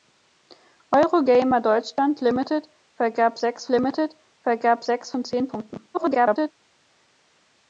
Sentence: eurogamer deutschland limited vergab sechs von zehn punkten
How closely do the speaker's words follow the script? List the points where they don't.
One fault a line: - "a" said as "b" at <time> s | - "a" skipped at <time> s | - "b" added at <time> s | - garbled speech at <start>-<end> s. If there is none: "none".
- "limited vergab sechs" added at 3.7 s
- garbled speech at 5.9-6.5 s